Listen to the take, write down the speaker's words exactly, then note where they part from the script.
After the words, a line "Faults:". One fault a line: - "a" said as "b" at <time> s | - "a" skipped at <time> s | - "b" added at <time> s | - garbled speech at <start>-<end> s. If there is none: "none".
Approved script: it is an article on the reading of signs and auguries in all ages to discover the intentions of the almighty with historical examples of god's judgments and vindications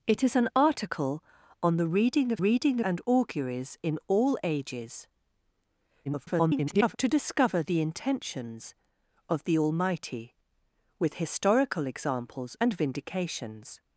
it is an article on the reading of reading and auguries in all ages [garbled] to discover the intentions of the almighty with historical examples and vindications
Faults:
- "signs" said as "reading" at 2.4 s
- garbled speech at 6.1-7.0 s
- "of god's judgments" skipped at 12.6 s